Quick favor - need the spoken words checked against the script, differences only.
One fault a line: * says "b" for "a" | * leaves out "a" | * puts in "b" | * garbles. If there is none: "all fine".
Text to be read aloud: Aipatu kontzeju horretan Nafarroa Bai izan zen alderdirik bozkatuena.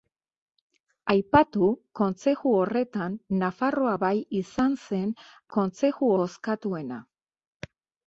* says "kontzeju" for "alderdirik"